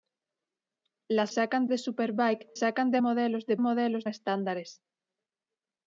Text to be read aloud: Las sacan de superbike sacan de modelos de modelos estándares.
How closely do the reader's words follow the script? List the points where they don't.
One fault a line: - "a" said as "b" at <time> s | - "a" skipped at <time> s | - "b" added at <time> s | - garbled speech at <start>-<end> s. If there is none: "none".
none